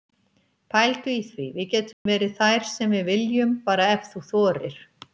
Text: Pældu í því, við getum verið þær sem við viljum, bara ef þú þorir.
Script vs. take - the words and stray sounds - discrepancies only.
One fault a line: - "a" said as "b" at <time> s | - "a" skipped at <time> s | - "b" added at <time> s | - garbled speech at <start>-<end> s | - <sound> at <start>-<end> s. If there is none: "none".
- dropout at 1.9-2.1 s